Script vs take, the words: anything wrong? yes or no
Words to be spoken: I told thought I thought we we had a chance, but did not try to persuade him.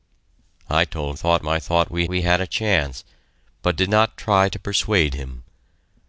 no